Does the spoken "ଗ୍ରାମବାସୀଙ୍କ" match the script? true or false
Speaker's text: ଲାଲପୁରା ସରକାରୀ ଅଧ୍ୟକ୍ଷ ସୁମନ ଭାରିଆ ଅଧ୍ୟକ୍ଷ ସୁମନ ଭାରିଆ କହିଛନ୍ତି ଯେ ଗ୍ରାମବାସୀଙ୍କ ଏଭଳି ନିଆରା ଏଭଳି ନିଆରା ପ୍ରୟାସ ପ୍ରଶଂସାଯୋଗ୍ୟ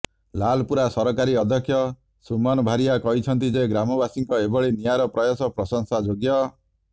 true